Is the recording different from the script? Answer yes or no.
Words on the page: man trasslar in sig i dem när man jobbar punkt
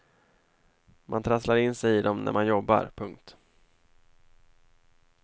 no